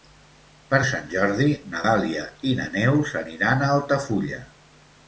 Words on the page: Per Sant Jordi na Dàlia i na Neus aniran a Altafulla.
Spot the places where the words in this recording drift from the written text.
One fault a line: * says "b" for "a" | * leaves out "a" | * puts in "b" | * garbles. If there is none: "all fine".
all fine